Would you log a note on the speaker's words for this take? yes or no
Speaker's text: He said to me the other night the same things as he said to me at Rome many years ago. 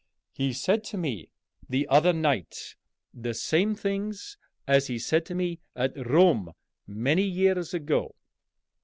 no